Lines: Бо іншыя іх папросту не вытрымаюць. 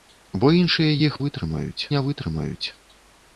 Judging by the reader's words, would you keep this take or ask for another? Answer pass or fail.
fail